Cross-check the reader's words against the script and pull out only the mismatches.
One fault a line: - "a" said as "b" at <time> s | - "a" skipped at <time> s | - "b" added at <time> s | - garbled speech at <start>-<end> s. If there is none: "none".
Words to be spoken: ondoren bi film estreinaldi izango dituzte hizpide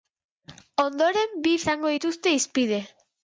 - "film estreinaldi" skipped at 1.5 s